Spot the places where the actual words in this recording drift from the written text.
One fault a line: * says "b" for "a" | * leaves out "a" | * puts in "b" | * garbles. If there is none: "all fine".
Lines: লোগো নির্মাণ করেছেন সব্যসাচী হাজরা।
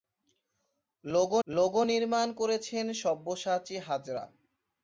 * puts in "লোগো"